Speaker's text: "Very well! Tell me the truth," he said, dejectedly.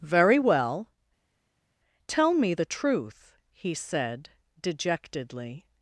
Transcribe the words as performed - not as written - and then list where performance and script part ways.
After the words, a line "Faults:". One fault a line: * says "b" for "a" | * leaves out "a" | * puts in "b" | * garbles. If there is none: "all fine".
"Very well! Tell me the truth," he said, dejectedly.
Faults:
all fine